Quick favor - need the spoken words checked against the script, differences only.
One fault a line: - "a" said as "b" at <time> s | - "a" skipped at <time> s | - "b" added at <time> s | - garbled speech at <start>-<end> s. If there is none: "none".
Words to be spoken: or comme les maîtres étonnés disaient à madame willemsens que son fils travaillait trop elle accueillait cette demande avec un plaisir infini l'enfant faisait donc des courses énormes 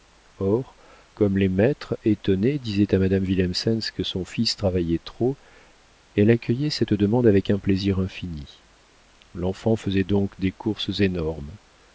none